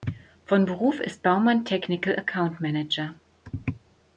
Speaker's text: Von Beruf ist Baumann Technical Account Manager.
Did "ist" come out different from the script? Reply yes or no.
no